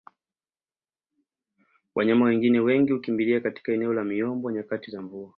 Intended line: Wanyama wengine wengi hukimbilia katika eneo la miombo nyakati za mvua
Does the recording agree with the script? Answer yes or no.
yes